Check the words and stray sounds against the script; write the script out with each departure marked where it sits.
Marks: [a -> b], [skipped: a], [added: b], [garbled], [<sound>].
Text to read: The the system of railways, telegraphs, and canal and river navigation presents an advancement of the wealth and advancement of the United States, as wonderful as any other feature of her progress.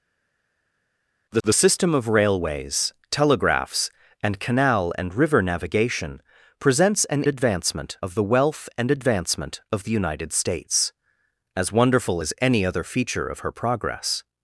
The the system of railways, telegraphs, and canal and river navigation presents an advancement of the wealth and advancement of the United States, as wonderful as any other feature of her progress.